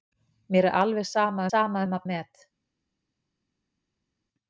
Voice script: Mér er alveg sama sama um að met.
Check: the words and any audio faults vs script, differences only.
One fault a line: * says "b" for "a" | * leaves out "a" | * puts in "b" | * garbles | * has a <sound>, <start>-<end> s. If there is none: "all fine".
all fine